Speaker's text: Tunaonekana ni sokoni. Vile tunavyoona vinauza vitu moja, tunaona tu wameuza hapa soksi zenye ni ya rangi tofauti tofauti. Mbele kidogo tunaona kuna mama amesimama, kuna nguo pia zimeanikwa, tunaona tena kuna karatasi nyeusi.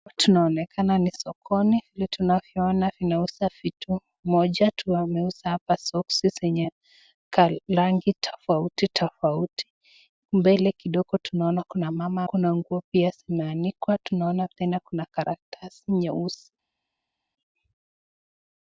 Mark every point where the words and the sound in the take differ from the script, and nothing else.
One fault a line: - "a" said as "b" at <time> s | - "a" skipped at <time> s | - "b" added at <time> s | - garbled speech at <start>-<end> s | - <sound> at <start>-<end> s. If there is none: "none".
- "tunaona" skipped at 4.7 s
- "ni" skipped at 6.6 s
- "amesimama" skipped at 12.2 s